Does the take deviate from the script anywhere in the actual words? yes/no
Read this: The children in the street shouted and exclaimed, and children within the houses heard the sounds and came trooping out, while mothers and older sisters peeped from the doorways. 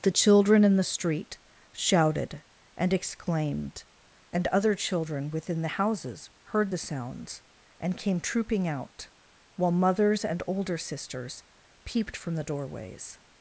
yes